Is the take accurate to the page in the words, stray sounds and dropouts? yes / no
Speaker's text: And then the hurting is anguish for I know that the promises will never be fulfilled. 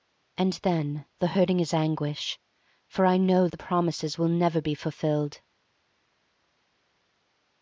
no